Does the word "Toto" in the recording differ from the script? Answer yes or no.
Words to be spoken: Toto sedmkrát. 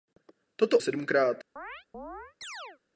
no